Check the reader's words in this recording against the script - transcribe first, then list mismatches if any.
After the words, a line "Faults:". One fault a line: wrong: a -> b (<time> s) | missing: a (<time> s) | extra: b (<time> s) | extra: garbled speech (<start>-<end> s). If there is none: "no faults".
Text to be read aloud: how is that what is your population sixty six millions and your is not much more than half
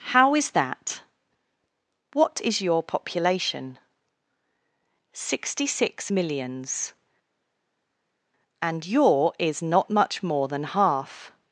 how is that what is your population sixty six millions and your is not much more than half
Faults:
no faults